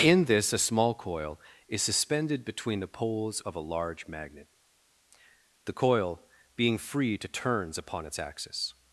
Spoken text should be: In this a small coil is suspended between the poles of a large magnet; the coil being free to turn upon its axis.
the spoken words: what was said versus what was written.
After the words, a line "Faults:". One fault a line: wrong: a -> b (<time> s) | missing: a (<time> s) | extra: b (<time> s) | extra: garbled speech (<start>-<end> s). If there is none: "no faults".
In this a small coil is suspended between the poles of a large magnet; the coil being free to turns upon its axis.
Faults:
wrong: turn -> turns (7.3 s)